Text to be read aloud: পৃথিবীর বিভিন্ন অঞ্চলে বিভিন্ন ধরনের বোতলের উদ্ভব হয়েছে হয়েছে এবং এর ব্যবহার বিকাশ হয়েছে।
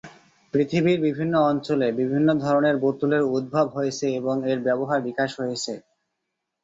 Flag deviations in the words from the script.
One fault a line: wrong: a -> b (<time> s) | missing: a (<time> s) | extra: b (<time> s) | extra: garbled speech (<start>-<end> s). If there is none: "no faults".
missing: হয়েছে (4.1 s)